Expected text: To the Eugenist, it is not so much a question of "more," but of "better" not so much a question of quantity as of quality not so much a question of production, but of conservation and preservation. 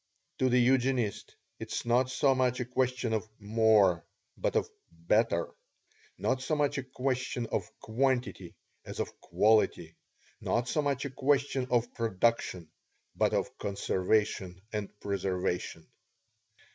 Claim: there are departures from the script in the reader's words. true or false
false